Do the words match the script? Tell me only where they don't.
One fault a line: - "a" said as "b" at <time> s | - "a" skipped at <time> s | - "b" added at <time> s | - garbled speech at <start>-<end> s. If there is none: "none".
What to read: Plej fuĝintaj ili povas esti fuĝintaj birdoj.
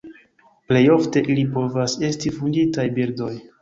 - "fuĝintaj" said as "ofte" at 0.9 s